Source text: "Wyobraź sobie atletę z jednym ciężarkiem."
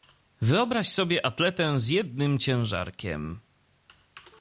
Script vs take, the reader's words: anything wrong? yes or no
no